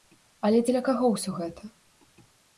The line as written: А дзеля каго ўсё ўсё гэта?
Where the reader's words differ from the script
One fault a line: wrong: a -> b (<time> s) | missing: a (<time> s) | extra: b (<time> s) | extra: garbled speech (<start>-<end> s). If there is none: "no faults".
wrong: А -> Але (0.5 s)
missing: ўсё (1.4 s)